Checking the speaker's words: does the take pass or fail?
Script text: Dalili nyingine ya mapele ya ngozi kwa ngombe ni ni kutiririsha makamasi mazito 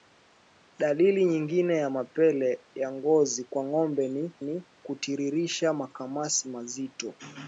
pass